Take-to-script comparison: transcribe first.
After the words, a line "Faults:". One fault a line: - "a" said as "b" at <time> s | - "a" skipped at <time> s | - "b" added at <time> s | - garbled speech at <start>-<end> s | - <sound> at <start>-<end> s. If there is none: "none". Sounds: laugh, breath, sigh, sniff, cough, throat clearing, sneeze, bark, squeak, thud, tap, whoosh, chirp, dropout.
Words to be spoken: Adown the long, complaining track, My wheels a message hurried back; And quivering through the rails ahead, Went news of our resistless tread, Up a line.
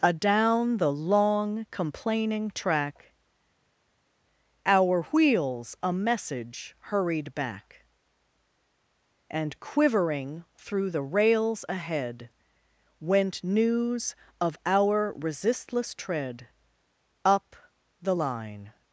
Adown the long, complaining track, Our wheels a message hurried back; And quivering through the rails ahead, Went news of our resistless tread, Up the line.
Faults:
- "My" said as "Our" at 4.6 s
- "a" said as "the" at 18.0 s